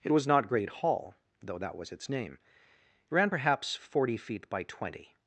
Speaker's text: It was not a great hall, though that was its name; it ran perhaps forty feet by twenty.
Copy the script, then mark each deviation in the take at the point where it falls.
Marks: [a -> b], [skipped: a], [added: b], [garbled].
It was not [skipped: a] great hall, though that was its name; it ran perhaps forty feet by twenty.